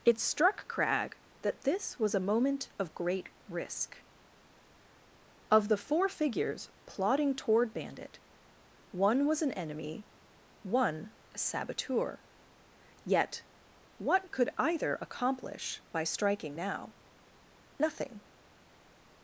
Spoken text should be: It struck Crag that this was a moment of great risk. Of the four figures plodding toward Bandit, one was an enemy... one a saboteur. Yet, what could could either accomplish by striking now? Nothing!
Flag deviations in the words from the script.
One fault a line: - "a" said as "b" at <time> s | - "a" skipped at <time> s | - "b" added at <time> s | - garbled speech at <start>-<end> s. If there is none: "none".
- "could" skipped at 14.5 s